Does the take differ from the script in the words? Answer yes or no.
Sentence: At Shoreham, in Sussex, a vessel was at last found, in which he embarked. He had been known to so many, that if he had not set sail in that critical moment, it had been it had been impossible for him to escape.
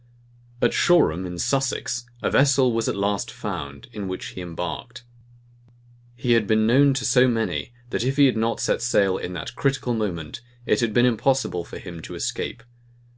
yes